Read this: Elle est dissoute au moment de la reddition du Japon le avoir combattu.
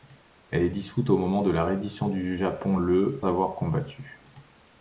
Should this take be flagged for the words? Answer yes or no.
no